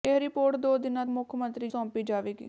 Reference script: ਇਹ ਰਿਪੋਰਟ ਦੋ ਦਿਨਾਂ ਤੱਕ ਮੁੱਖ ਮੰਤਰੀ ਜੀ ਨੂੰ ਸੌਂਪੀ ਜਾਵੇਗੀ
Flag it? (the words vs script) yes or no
yes